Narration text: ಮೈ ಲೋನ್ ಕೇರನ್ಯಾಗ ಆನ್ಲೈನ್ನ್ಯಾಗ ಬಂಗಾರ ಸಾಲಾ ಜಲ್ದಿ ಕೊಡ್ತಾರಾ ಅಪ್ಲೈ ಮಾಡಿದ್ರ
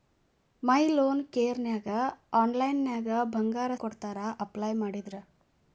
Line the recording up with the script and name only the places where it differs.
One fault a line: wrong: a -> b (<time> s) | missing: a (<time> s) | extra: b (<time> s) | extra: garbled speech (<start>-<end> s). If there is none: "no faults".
missing: ಸಾಲಾ ಜಲ್ದಿ (3.7 s)